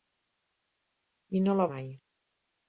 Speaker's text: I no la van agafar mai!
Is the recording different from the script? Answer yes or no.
yes